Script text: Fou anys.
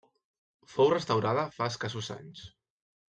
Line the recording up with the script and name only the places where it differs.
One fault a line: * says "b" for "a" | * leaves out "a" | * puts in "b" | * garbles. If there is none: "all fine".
* puts in "restaurada fa escassos"